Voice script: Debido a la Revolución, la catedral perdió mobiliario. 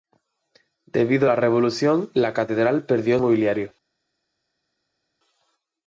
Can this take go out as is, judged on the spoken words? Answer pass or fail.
pass